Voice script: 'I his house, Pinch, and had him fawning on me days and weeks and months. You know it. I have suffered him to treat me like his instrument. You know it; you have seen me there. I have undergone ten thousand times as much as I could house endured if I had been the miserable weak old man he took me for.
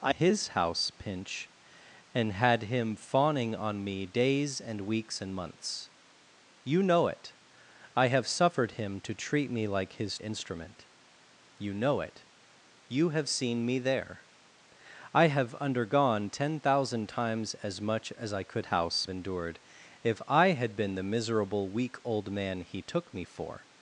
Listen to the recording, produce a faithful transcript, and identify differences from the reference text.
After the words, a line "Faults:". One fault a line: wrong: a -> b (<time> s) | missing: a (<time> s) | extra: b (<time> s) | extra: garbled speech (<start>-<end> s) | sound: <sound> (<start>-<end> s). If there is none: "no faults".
'I his house, Pinch, and had him fawning on me days and weeks and months. You know it. I have suffered him to treat me like his instrument. You know it; you have seen me there. I have undergone ten thousand times as much as I could house endured if I had been the miserable weak old man he took me for.
Faults:
no faults